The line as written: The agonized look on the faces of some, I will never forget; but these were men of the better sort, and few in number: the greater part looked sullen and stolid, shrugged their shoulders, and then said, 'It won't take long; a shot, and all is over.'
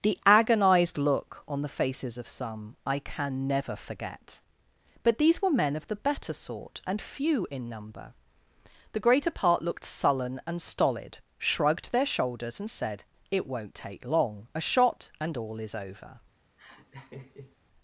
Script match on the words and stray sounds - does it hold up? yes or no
no